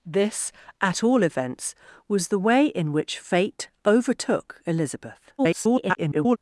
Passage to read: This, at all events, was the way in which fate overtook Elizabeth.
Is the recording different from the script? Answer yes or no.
yes